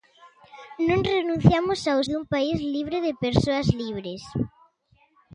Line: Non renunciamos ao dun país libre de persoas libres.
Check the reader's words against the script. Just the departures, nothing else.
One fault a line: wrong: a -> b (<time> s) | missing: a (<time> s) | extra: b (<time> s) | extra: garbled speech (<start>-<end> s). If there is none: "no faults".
no faults